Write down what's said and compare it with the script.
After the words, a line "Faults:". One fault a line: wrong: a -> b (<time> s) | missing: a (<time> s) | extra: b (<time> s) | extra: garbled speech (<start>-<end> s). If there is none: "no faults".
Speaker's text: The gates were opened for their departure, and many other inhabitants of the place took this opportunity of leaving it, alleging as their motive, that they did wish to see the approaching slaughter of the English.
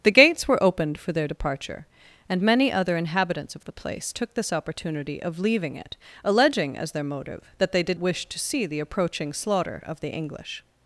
The gates were opened for their departure, and many other inhabitants of the place took this opportunity of leaving it, alleging as their motive, that they did wish to see the approaching slaughter of the English.
Faults:
no faults